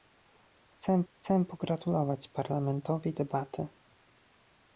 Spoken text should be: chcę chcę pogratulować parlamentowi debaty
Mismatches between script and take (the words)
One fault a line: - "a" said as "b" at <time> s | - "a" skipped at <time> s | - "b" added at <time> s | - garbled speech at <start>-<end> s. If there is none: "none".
none